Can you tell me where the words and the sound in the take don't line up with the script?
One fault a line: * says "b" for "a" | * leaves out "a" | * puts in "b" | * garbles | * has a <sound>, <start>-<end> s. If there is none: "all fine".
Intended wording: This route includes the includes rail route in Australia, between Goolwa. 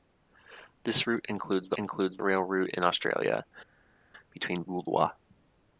all fine